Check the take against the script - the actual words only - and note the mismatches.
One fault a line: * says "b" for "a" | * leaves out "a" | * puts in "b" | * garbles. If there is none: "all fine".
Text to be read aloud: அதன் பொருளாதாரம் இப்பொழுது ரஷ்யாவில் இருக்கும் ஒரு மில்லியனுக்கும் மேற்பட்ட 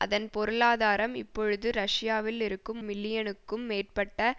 * leaves out "ஒரு"